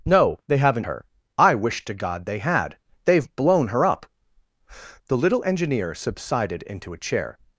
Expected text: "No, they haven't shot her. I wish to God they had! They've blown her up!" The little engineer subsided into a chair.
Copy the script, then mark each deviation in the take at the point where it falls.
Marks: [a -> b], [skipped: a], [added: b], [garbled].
"No, they haven't [skipped: shot] her. I wish to God they had! They've blown her up!" The little engineer subsided into a chair.